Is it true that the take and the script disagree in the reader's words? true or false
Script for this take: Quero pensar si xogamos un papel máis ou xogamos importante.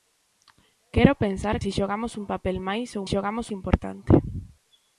false